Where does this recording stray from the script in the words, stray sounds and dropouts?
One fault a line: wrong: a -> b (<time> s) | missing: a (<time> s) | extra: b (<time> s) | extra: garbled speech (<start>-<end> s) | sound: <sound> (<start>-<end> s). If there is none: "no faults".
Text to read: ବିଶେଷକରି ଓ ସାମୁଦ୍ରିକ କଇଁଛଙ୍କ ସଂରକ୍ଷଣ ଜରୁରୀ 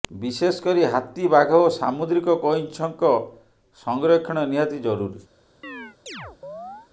extra: ହାତୀ ବାଘ (0.8 s)
extra: ନିହାତି (4.5 s)
sound: chirp (5.6-6.9 s)